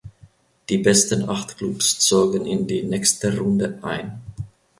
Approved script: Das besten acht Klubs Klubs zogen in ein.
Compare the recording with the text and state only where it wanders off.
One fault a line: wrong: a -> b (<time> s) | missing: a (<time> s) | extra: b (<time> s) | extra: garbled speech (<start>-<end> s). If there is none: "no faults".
wrong: Das -> Die (0.7 s)
missing: Klubs (2.0 s)
extra: die nächste Runde (2.7 s)